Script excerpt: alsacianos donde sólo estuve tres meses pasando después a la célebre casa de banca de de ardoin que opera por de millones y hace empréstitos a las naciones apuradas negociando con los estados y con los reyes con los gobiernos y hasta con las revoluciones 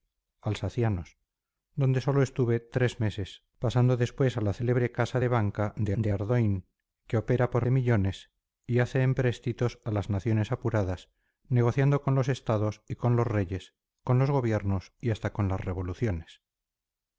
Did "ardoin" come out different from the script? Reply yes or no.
no